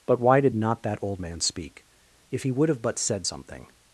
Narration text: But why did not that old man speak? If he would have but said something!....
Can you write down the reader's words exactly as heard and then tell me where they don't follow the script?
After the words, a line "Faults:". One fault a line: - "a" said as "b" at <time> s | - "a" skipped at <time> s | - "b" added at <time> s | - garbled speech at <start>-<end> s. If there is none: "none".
But why did not that old man speak? If he would have but said something!....
Faults:
none